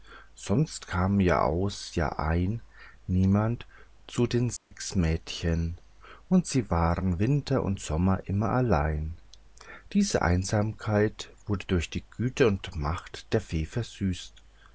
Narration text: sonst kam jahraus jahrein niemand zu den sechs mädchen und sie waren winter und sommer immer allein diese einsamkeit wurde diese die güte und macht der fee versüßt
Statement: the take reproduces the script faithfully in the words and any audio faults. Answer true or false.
false